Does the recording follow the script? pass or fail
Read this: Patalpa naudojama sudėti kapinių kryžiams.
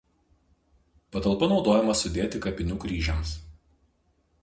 pass